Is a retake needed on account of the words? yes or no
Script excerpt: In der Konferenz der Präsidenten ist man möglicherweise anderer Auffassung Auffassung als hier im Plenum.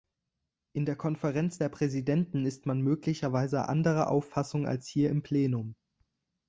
yes